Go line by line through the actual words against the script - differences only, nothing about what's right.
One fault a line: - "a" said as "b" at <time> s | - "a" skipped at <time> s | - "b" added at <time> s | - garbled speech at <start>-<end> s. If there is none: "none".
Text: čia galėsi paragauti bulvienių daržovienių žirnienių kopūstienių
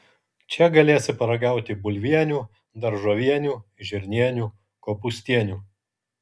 none